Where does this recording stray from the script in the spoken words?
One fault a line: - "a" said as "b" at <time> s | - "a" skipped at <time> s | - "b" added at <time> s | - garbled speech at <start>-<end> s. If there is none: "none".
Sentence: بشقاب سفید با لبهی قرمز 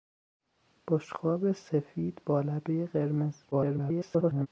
- garbled speech at 3.5-4.5 s